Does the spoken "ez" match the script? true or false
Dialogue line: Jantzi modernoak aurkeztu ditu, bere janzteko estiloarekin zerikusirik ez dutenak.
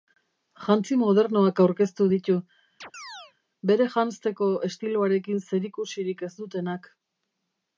true